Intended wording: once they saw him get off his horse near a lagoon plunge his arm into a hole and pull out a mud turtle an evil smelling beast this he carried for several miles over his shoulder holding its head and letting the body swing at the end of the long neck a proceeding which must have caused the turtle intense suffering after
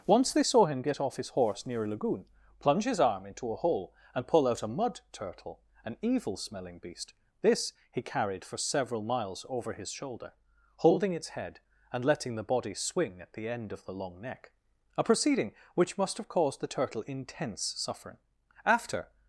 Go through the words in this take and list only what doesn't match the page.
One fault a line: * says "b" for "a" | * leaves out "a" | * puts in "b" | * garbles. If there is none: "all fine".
all fine